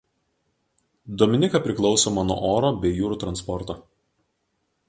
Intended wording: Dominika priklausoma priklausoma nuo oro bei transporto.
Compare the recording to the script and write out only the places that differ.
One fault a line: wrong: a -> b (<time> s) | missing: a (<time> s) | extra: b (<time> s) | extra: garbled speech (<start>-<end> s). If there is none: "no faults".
missing: priklausoma (2.2 s)
extra: jūrų (3.0 s)